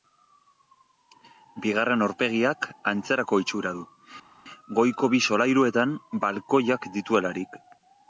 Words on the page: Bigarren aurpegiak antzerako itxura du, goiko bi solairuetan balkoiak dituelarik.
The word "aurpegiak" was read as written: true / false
true